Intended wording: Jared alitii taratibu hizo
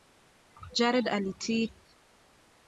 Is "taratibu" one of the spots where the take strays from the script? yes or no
yes